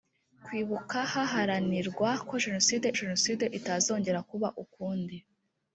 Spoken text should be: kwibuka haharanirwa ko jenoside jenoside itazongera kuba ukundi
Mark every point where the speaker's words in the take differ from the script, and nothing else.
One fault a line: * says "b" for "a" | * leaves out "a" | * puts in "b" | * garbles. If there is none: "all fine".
all fine